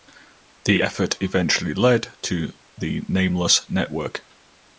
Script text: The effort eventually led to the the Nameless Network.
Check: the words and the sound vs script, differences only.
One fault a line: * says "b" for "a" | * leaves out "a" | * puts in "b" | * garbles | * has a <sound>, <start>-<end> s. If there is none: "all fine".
* leaves out "the"